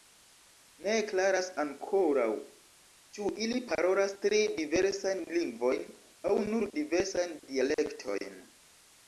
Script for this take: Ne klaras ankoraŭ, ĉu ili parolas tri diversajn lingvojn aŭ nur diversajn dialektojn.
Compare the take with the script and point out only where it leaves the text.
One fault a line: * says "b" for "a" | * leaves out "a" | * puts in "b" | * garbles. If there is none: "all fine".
all fine